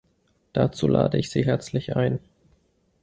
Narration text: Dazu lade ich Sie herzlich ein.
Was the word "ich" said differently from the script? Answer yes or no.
no